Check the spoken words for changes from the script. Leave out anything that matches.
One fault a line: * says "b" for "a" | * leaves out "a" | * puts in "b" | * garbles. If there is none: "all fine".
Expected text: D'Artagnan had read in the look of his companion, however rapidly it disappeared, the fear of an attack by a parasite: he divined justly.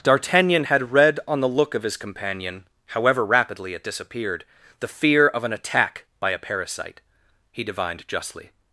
* says "on" for "in"